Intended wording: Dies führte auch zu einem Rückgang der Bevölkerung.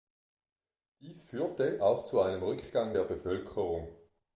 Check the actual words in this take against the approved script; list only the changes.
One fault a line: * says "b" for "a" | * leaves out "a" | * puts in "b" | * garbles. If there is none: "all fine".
all fine